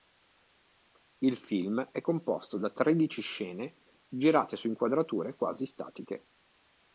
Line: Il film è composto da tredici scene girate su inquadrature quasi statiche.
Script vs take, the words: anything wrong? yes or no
no